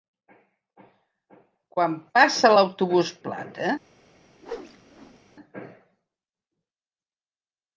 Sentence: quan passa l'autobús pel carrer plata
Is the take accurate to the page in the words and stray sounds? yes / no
no